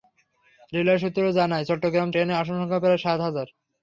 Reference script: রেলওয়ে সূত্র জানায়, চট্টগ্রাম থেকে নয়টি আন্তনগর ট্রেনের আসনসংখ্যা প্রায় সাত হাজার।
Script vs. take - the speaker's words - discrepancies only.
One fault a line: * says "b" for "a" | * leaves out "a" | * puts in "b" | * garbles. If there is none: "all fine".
* leaves out "থেকে নয়টি আন্তনগর"